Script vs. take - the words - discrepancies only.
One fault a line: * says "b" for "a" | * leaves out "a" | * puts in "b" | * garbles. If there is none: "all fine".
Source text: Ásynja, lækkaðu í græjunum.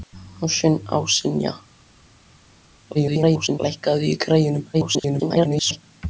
* garbles
* garbles